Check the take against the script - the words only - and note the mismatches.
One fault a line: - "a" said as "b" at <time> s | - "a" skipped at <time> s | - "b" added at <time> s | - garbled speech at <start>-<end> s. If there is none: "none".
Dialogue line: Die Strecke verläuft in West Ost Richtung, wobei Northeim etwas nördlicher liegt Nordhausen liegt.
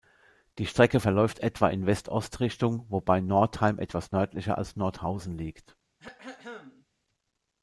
- "etwa" added at 1.4 s
- "liegt" said as "als" at 4.6 s